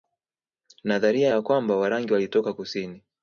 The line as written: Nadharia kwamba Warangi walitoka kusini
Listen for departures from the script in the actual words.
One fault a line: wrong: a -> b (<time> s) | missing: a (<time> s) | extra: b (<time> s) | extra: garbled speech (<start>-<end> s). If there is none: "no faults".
extra: ya (1.3 s)